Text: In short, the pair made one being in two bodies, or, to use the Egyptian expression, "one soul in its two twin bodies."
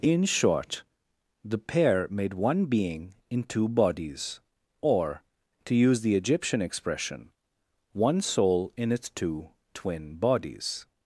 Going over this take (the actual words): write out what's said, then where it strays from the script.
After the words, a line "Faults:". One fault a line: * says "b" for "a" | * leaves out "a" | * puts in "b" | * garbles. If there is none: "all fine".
In short, the pair made one being in two bodies, or, to use the Egyptian expression, "one soul in its two twin bodies."
Faults:
all fine